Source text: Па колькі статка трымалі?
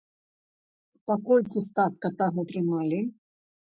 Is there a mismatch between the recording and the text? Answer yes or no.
yes